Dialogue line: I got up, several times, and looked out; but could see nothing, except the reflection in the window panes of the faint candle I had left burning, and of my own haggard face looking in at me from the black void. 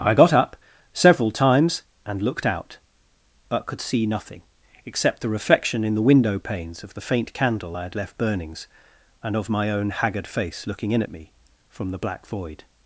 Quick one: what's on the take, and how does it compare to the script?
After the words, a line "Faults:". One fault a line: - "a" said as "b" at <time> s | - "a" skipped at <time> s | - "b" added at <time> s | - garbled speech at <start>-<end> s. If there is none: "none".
I got up, several times, and looked out; but could see nothing, except the reflection in the window panes of the faint candle I had left burnings, and of my own haggard face looking in at me from the black void.
Faults:
- "burning" said as "burnings" at 8.2 s